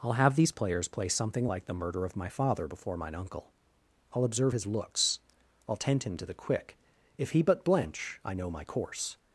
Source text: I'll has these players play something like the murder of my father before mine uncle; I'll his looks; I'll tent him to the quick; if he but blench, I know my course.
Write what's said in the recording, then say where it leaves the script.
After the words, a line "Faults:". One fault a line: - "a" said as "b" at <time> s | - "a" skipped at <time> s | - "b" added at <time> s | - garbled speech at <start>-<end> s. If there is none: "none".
I'll have these players play something like the murder of my father before mine uncle; I'll observe his looks; I'll tent him to the quick; if he but blench, I know my course.
Faults:
- "has" said as "have" at 0.1 s
- "observe" added at 4.2 s